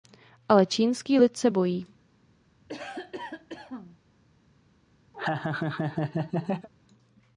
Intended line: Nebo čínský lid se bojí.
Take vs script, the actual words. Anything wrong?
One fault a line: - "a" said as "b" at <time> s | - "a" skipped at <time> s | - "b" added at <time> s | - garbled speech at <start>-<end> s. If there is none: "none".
- "Nebo" said as "Ale" at 0.5 s